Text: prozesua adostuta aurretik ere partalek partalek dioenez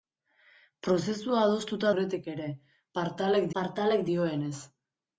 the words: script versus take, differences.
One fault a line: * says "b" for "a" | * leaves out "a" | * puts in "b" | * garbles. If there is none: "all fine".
all fine